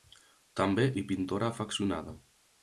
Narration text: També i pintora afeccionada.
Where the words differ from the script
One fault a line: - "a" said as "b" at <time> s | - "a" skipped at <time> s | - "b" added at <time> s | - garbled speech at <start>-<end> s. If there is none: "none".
none